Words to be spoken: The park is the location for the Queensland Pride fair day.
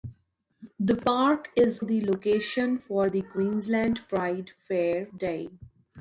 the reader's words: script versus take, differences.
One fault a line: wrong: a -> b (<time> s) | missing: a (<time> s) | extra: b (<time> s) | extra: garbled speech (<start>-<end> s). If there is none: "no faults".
no faults